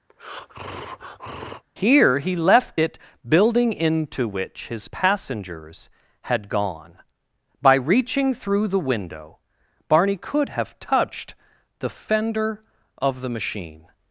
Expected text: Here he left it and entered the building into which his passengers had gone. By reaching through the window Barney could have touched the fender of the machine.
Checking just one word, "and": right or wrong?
wrong